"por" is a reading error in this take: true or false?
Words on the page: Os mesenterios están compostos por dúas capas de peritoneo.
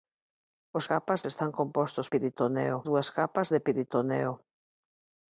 true